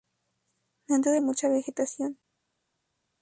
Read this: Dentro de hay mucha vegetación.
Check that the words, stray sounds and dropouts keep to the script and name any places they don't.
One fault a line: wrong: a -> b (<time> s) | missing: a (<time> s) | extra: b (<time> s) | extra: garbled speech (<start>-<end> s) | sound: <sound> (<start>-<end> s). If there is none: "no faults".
no faults